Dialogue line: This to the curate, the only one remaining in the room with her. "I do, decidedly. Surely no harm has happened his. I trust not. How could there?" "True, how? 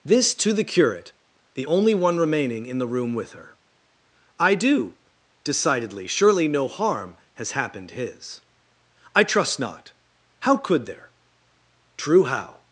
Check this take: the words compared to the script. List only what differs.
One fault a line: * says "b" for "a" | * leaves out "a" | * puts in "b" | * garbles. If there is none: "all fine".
all fine